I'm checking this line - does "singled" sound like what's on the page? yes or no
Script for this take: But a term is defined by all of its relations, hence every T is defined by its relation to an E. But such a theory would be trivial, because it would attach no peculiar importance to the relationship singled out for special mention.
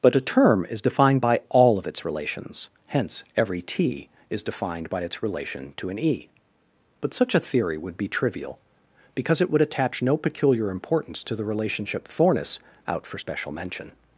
no